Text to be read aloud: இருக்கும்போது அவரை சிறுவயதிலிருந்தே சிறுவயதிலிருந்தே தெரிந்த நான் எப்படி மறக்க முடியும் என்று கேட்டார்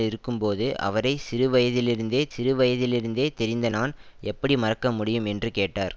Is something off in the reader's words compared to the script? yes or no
no